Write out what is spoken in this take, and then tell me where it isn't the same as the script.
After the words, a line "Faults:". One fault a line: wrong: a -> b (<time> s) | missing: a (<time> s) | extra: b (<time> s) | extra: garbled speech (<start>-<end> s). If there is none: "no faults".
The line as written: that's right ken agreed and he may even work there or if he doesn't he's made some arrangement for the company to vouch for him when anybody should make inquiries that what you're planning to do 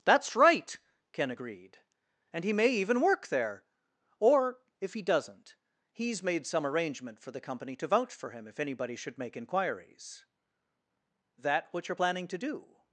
that's right ken agreed and he may even work there or if he doesn't he's made some arrangement for the company to vouch for him if anybody should make inquiries that what you're planning to do
Faults:
wrong: when -> if (8.5 s)